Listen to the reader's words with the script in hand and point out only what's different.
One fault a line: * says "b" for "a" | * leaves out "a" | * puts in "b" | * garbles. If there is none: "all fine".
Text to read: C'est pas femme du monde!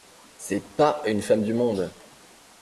* puts in "une"